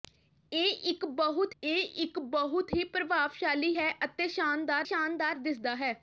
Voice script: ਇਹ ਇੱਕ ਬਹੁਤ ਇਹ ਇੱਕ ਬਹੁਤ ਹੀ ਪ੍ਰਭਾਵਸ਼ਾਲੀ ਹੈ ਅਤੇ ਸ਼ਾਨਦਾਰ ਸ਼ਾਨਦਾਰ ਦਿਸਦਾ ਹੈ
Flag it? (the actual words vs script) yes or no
no